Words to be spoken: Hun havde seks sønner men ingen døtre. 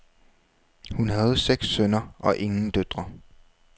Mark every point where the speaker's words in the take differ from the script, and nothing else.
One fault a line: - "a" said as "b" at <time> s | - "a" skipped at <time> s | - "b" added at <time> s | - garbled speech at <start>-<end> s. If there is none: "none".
- "men" said as "og" at 2.2 s